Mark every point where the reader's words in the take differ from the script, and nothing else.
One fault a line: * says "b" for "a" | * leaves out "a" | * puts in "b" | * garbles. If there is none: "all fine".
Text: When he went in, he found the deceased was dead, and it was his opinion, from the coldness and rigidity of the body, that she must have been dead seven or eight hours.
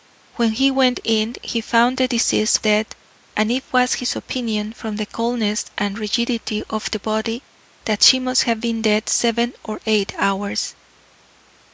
* leaves out "was"